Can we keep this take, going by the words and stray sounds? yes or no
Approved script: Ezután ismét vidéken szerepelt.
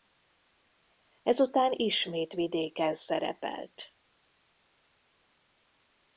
yes